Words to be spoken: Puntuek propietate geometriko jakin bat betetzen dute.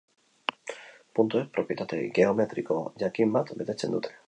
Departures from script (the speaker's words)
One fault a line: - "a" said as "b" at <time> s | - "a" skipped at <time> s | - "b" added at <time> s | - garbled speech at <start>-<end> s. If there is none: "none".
none